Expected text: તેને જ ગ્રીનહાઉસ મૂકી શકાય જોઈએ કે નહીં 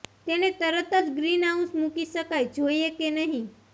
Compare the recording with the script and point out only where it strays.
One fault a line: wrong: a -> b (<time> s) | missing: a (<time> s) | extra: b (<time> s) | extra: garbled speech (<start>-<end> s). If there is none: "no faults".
extra: તરત (0.5 s)